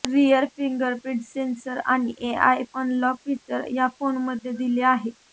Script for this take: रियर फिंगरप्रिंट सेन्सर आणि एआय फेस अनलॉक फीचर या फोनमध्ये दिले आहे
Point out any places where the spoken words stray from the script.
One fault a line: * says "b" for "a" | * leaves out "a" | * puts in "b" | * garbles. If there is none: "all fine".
* leaves out "फेस"